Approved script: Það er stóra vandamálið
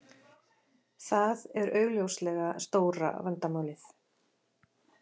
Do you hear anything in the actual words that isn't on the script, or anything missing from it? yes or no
yes